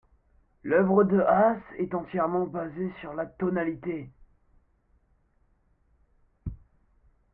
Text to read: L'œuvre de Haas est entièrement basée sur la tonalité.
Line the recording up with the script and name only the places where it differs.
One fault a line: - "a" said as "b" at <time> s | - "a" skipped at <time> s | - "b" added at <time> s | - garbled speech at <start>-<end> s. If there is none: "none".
none